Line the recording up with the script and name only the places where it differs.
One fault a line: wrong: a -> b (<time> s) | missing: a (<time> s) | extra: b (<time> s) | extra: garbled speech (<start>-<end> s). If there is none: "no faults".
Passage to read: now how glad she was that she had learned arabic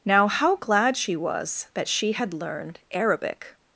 no faults